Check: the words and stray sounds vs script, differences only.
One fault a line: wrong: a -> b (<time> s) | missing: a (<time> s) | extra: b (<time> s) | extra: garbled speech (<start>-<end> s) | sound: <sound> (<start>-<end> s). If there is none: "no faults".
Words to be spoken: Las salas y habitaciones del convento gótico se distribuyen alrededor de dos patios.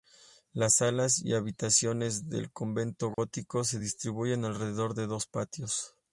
sound: dropout (3.1-3.2 s)